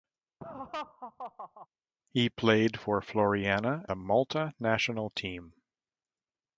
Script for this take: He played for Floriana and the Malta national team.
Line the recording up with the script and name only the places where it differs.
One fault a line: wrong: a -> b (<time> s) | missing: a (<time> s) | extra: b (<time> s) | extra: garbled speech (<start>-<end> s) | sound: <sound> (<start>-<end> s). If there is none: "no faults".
sound: laugh (0.4-1.7 s)
missing: and (3.8 s)